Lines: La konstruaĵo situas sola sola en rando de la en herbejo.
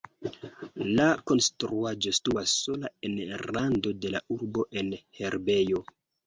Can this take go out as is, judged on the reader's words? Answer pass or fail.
fail